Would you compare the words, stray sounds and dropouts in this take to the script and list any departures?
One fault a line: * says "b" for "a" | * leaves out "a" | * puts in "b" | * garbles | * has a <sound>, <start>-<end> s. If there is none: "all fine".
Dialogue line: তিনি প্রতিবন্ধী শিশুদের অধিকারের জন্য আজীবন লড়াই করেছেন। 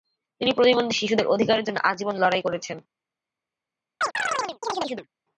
* has a chirp, 4.0-5.1 s